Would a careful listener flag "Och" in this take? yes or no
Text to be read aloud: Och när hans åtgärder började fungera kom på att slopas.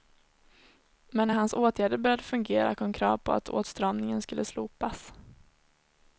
yes